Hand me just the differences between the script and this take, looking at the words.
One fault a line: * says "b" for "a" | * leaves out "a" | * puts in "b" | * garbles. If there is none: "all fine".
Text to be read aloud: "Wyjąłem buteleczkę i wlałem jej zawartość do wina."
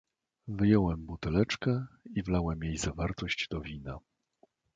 all fine